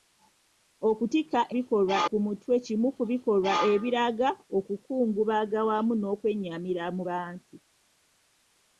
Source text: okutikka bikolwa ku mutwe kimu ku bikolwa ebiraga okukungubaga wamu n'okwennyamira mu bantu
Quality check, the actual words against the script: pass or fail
pass